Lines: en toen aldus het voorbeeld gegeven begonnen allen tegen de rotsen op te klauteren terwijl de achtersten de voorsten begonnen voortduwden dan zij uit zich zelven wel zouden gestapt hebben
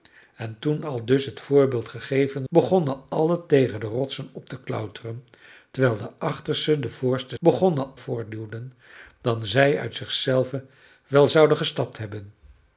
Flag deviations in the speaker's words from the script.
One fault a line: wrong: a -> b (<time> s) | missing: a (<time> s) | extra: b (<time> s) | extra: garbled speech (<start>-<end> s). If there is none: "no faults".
no faults